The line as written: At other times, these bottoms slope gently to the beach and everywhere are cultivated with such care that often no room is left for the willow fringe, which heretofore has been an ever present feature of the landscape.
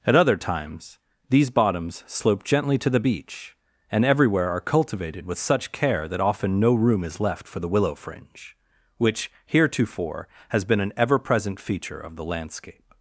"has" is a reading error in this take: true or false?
false